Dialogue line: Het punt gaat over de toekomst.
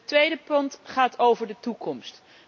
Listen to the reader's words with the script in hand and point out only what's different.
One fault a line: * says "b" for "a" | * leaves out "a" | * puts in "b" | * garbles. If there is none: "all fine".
* puts in "tweede"